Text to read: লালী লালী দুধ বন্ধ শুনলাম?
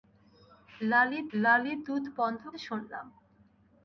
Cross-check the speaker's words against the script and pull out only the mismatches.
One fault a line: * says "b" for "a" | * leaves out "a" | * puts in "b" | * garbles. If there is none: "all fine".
all fine